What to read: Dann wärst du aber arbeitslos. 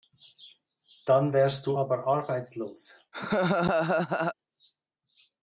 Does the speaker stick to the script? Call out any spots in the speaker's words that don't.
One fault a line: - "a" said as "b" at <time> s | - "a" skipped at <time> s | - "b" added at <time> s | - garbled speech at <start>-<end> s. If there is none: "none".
none